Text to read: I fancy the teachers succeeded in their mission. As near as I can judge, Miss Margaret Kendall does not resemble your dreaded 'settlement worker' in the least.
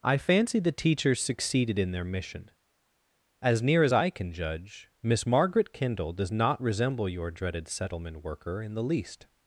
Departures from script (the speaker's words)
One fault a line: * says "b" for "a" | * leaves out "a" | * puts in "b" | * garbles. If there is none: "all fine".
all fine